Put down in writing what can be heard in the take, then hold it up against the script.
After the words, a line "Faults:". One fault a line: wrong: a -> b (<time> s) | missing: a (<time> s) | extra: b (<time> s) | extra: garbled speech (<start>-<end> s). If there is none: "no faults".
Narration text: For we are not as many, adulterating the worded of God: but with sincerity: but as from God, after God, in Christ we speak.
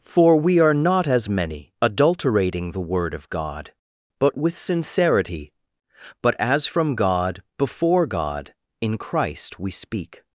For we are not as many, adulterating the word of God: but with sincerity: but as from God, before God, in Christ we speak.
Faults:
wrong: worded -> word (2.8 s)
wrong: after -> before (7.6 s)